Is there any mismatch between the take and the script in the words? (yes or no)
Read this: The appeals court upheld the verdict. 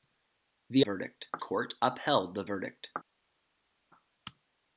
yes